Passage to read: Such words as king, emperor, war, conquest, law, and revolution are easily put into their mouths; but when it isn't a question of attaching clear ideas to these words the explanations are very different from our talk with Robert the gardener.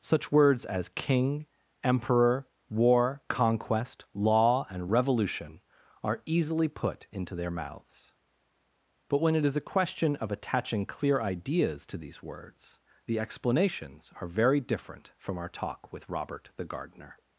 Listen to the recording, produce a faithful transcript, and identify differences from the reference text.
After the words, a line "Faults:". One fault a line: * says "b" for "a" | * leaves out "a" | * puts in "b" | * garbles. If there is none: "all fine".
Such words as king, emperor, war, conquest, law, and revolution are easily put into their mouths; but when it is a question of attaching clear ideas to these words the explanations are very different from our talk with Robert the gardener.
Faults:
* says "is" for "isn't"